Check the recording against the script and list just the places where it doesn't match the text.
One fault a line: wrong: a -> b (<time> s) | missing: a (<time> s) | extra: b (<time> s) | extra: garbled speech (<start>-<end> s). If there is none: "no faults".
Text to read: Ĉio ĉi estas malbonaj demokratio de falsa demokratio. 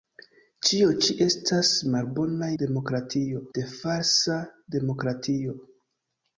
no faults